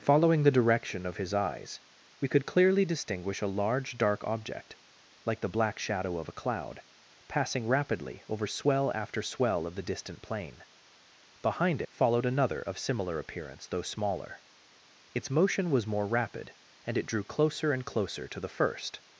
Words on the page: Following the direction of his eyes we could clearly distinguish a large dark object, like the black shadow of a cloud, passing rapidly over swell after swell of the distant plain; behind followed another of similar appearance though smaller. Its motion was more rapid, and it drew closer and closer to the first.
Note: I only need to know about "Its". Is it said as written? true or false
true